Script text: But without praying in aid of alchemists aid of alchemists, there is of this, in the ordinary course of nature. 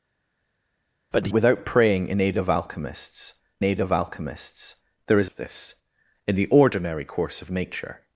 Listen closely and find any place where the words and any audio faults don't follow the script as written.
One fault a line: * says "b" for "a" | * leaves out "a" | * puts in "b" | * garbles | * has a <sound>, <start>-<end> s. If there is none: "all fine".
all fine